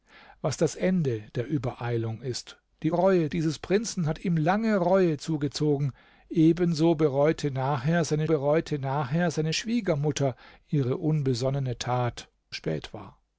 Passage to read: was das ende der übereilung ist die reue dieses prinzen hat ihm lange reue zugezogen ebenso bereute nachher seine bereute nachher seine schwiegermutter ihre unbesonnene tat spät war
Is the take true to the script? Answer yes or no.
yes